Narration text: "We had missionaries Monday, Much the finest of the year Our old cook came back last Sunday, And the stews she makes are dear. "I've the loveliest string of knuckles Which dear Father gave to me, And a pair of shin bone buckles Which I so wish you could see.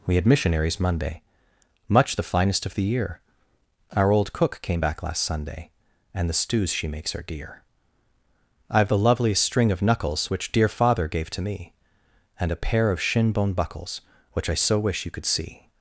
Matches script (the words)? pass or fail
pass